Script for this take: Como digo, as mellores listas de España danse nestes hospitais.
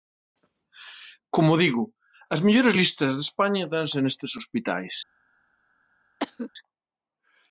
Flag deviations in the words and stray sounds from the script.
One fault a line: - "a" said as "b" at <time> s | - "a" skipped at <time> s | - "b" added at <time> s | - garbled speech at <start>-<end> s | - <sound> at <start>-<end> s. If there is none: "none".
- cough at 6.2-6.5 s